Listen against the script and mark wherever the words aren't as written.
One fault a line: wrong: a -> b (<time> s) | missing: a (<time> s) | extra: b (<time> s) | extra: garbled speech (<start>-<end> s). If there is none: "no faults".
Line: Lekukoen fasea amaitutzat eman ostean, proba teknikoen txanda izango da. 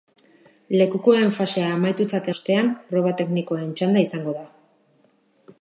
missing: eman (2.3 s)